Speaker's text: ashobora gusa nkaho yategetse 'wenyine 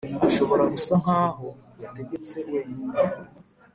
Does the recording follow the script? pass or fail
pass